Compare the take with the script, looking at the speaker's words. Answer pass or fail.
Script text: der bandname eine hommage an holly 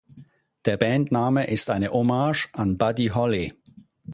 fail